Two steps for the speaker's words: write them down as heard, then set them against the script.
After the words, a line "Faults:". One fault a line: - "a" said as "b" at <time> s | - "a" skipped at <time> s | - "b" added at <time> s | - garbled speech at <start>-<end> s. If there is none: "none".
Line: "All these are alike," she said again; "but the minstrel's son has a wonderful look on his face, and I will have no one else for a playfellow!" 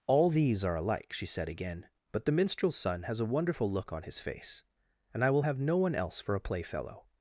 "All these are alike," she said again; "but the minstrel's son has a wonderful look on his face, and I will have no one else for a playfellow!"
Faults:
none